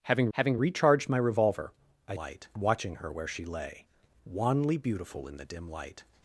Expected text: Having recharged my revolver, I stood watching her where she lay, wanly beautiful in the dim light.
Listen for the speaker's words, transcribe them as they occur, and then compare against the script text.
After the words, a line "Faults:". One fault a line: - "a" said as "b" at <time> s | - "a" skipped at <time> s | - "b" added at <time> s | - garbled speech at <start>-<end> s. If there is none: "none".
Having having recharged my revolver, I light watching her where she lay, wanly beautiful in the dim light.
Faults:
- "having" added at 0.3 s
- "stood" said as "light" at 2.1 s